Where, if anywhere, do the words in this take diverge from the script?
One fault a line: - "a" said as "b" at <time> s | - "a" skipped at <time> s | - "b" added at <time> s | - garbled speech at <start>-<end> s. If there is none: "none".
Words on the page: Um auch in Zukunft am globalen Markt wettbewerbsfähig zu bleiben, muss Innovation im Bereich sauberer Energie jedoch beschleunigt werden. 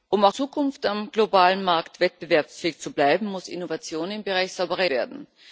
- "in" skipped at 0.3 s
- "Energie jedoch beschleunigt" skipped at 4.8 s